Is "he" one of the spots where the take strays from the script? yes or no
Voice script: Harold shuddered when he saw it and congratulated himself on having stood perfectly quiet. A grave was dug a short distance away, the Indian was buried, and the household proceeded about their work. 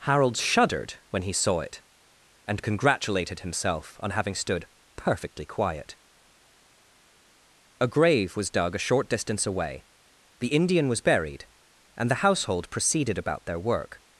no